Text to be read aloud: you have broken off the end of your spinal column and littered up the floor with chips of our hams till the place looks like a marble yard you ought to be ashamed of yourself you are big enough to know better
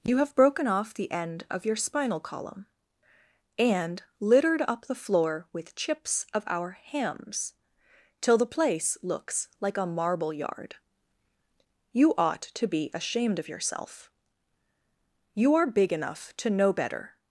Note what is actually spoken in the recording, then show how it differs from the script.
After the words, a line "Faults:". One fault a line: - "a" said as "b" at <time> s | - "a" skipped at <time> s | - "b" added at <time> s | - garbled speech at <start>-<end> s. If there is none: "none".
you have broken off the end of your spinal column and littered up the floor with chips of our hams till the place looks like a marble yard you ought to be ashamed of yourself you are big enough to know better
Faults:
none